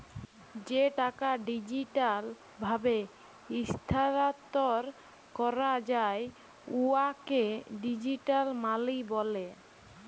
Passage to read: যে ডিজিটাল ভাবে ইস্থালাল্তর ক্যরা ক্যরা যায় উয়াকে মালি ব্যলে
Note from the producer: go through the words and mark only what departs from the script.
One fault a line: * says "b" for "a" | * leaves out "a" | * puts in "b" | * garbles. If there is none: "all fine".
* puts in "টাকা"
* leaves out "ক্যরা"
* puts in "ডিজিটাল"